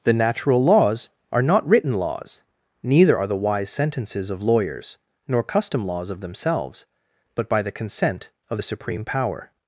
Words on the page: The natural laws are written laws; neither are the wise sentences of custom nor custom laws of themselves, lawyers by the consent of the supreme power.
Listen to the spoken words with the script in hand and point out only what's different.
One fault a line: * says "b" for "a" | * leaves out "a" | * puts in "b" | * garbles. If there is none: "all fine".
* puts in "not"
* says "lawyers" for "custom"
* says "but" for "lawyers"